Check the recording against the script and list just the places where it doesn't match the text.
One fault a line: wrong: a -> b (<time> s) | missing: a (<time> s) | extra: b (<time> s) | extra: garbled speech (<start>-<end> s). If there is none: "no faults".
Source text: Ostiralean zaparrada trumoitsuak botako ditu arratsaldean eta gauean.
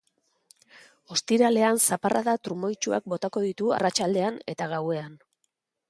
no faults